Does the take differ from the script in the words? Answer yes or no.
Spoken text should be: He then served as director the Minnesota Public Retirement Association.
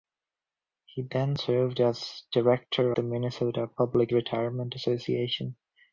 no